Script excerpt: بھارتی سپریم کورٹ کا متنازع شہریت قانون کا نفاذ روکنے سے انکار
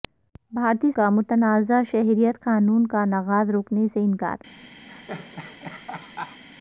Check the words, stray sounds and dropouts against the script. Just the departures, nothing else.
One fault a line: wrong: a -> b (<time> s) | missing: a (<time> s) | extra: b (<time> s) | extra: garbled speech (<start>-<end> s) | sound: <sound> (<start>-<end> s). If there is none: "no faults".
missing: سپریم کورٹ (0.9 s)
sound: laugh (4.9-6.4 s)